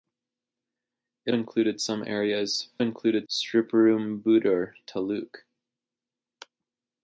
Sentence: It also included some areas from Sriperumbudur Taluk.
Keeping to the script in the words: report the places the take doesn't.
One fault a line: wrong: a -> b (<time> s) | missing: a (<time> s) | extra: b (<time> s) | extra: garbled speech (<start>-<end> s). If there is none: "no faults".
missing: also (1.4 s)
wrong: from -> included (2.8 s)